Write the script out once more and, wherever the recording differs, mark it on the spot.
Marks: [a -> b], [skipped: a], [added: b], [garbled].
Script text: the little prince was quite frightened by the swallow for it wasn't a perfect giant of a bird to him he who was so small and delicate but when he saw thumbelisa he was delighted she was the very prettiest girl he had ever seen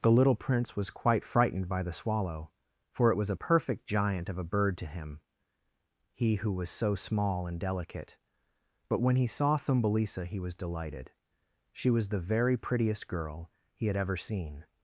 the little prince was quite frightened by the swallow for it [wasn't -> was] a perfect giant of a bird to him he who was so small and delicate but when he saw thumbelisa he was delighted she was the very prettiest girl he had ever seen